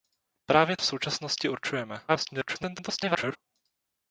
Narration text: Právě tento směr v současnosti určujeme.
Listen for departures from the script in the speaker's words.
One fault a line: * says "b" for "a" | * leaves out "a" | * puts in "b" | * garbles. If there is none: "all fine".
* leaves out "tento směr"
* garbles